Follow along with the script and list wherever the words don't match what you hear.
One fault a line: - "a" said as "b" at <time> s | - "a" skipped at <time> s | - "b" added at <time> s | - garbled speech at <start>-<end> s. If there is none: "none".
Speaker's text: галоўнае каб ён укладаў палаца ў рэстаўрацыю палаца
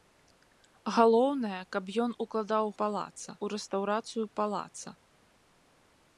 none